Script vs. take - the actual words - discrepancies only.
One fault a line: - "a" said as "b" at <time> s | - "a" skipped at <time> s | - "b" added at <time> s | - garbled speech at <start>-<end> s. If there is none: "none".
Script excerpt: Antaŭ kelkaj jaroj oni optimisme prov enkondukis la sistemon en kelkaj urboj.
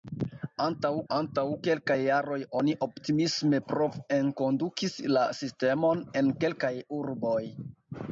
- "antaŭ" added at 1.1 s